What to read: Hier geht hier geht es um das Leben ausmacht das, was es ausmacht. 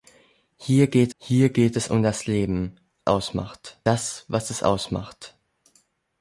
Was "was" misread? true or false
false